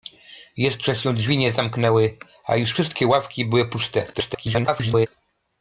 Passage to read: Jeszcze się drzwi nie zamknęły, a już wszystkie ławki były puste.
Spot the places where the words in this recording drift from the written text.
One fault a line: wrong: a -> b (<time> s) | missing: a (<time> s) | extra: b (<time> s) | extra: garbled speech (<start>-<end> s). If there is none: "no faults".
extra: garbled speech (4.1-5.1 s)